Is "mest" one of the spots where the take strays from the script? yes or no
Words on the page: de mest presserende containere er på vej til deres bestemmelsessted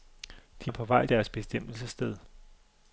yes